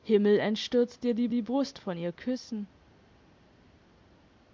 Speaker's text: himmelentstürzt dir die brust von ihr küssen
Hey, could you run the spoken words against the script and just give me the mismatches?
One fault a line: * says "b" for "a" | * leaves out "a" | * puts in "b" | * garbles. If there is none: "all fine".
* puts in "die"